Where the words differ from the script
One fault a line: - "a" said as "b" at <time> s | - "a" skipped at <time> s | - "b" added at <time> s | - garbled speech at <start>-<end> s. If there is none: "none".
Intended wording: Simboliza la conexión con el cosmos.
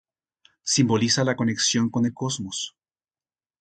none